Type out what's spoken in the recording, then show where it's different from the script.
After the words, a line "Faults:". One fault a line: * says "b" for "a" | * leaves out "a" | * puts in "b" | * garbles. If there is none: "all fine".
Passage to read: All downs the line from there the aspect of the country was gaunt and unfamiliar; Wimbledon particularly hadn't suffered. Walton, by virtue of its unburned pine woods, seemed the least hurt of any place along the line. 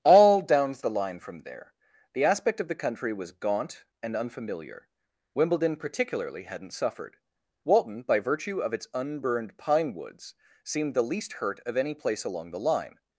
All downs the line from there the aspect of the country was gaunt and unfamiliar; Wimbledon particularly hadn't suffered. Walton, by virtue of its unburned pine woods, seemed the least hurt of any place along the line.
Faults:
all fine